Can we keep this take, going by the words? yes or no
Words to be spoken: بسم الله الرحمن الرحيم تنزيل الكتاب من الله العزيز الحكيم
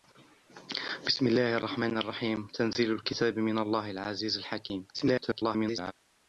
no